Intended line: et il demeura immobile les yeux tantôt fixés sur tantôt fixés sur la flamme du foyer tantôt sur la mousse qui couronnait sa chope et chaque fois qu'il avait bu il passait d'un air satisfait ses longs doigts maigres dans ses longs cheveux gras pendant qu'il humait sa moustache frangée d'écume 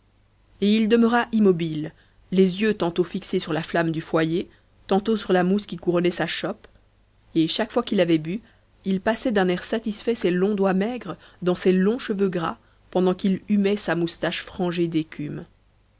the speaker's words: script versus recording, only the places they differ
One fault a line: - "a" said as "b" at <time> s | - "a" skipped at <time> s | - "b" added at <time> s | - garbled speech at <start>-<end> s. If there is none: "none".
- "tantôt fixés sur" skipped at 3.5 s